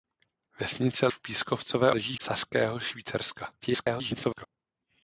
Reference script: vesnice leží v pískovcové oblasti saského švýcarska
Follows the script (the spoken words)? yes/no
no